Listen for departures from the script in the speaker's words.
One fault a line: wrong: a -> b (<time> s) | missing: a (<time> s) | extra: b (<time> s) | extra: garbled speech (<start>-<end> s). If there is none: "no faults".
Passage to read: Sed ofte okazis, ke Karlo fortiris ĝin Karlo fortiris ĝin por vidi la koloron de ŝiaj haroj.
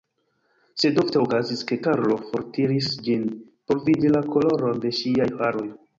missing: Karlo fortiris ĝin (3.2 s)